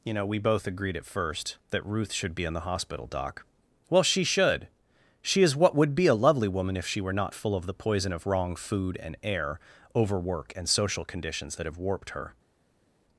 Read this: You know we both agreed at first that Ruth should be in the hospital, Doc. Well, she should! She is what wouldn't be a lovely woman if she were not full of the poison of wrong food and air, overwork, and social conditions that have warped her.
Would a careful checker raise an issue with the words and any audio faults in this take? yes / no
yes